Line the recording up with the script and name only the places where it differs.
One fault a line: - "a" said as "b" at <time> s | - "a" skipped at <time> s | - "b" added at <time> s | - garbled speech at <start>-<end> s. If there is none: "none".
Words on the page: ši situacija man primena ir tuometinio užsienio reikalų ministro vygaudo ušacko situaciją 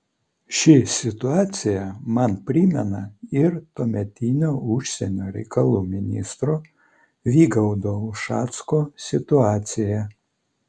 none